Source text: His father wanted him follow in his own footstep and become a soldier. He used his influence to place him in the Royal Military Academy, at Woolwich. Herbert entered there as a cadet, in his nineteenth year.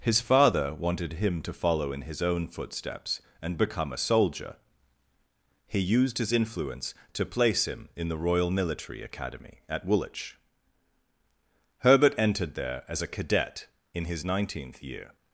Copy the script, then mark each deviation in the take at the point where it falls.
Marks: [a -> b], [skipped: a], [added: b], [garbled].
His father wanted him [added: to] follow in his own [footstep -> footsteps] and become a soldier. He used his influence to place him in the Royal Military Academy, at Woolwich. Herbert entered there as a cadet, in his nineteenth year.